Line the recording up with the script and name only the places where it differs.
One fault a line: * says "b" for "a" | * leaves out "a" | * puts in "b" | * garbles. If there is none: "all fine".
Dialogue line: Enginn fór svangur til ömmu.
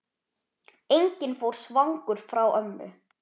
* says "frá" for "til"